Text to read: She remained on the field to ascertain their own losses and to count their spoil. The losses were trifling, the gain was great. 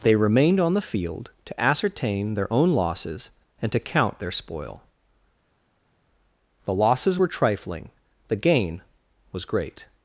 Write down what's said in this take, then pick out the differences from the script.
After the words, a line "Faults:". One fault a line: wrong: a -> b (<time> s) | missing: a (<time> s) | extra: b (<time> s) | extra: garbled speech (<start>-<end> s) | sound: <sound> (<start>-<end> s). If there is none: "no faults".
They remained on the field to ascertain their own losses and to count their spoil. The losses were trifling, the gain was great.
Faults:
wrong: She -> They (0.0 s)